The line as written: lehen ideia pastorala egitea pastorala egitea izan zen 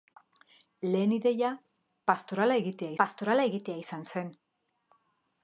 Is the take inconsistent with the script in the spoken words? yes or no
no